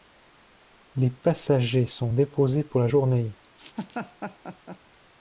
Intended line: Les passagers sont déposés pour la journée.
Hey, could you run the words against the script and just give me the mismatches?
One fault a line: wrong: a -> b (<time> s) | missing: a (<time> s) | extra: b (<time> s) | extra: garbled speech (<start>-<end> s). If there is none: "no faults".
no faults